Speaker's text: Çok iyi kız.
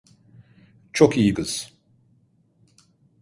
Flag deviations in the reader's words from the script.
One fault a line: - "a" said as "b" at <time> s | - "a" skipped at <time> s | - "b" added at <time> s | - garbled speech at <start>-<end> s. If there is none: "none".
none